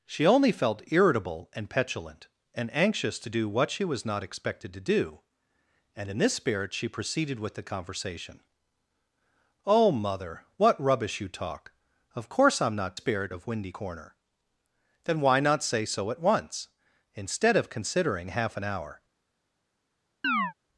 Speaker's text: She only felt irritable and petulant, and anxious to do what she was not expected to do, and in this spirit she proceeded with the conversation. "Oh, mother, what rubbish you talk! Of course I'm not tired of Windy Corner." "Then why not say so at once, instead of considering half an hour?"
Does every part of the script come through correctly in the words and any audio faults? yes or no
no